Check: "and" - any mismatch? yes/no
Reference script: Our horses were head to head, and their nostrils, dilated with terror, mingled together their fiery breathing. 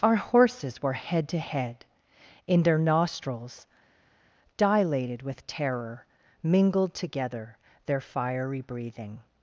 yes